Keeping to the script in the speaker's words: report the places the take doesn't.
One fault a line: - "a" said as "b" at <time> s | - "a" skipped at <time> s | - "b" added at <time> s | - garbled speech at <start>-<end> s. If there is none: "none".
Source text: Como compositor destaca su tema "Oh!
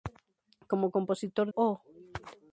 - "destaca su tema" skipped at 1.5 s